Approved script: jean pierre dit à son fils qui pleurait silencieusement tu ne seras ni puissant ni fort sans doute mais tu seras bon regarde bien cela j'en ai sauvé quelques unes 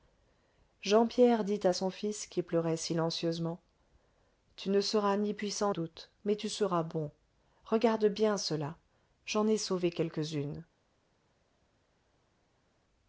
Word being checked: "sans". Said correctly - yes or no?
no